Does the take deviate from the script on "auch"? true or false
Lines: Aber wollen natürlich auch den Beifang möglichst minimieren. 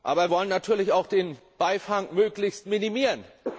false